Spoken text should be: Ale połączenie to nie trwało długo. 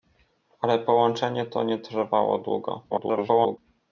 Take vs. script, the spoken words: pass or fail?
fail